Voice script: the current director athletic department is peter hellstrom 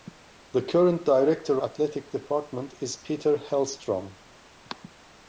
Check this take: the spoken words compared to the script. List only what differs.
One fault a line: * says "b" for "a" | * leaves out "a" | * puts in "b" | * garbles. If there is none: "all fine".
all fine